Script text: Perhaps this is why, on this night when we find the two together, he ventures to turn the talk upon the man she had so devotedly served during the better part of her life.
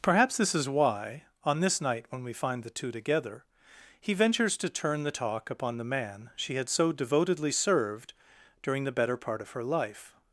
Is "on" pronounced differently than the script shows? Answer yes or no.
no